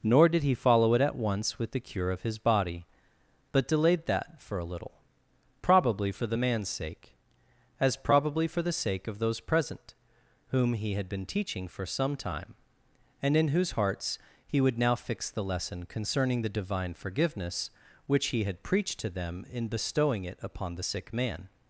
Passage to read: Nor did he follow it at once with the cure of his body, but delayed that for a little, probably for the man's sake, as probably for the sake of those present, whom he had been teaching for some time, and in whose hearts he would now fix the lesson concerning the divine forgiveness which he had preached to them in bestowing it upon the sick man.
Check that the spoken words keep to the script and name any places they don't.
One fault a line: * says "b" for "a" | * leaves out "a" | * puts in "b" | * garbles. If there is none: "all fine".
all fine